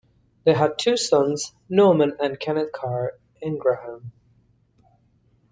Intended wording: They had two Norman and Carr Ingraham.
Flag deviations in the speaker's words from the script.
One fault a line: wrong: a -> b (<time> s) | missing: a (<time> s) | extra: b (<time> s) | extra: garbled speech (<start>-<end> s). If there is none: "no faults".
extra: sons (1.0 s)
extra: Kenneth (2.4 s)